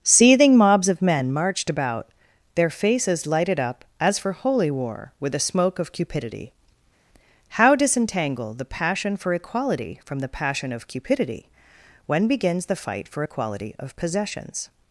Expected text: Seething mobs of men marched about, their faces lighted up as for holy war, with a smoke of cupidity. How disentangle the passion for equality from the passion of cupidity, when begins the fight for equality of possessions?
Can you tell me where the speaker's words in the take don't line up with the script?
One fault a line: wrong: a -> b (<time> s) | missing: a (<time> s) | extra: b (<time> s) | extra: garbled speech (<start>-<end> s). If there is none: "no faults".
no faults